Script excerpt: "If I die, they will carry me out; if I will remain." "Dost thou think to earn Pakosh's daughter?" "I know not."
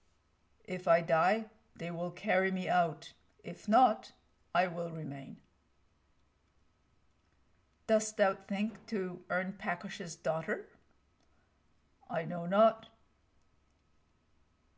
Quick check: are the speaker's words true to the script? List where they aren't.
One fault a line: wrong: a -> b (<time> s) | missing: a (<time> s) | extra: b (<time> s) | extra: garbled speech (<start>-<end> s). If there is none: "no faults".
extra: not (3.7 s)